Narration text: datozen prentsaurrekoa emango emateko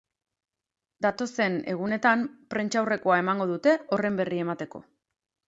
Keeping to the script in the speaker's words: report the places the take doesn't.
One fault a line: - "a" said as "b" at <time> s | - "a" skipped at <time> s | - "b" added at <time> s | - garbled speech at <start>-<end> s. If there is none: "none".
- "egunetan" added at 1.7 s
- "dute horren berri" added at 3.5 s